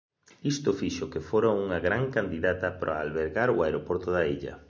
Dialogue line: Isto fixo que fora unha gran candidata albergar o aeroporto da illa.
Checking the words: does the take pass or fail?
fail